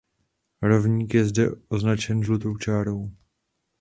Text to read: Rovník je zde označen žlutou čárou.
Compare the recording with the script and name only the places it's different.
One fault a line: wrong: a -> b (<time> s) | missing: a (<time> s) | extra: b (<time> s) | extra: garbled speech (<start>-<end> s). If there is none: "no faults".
no faults